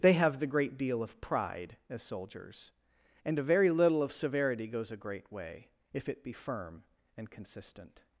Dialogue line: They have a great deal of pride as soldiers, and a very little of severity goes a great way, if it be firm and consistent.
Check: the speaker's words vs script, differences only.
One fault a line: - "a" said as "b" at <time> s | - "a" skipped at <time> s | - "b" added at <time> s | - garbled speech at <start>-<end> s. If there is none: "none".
- "a" said as "the" at 0.4 s